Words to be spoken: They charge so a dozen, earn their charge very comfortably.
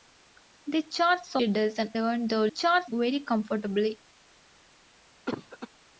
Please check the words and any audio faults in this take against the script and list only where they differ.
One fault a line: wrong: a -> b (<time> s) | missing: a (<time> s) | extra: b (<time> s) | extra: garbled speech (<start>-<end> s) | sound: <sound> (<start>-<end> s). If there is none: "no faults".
sound: cough (5.3-5.7 s)